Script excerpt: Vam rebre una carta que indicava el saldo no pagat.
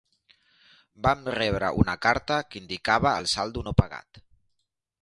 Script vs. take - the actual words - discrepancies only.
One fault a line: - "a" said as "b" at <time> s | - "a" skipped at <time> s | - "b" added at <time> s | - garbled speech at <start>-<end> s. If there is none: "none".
none